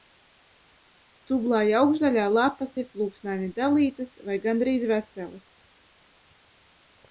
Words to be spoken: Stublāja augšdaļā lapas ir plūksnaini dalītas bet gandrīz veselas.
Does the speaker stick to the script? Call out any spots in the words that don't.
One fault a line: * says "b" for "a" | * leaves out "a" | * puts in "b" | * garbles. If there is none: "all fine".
* says "vai" for "bet"